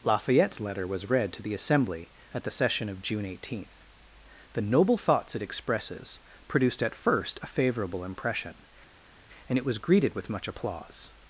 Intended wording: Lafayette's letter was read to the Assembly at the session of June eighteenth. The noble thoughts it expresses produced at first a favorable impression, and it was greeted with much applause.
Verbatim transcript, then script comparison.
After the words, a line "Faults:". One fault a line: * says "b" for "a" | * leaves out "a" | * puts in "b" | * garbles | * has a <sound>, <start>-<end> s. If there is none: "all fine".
Lafayette's letter was read to the Assembly at the session of June eighteenth. The noble thoughts it expresses produced at first a favorable impression, and it was greeted with much applause.
Faults:
all fine